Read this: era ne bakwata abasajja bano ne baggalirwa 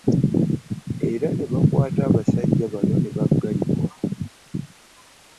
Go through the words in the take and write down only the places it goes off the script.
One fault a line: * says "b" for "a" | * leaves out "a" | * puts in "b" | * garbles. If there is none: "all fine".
all fine